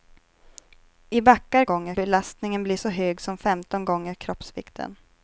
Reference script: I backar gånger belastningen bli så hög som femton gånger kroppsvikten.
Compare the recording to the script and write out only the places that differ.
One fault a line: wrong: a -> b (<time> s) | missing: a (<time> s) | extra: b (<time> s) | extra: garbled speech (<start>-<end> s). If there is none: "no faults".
no faults